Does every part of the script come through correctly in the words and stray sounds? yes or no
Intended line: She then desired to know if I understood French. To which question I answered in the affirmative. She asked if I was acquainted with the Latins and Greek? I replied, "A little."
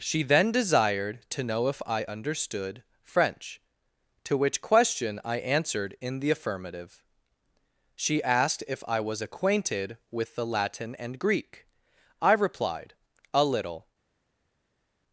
no